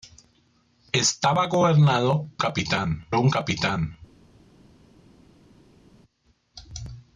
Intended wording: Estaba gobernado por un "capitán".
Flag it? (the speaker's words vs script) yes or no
yes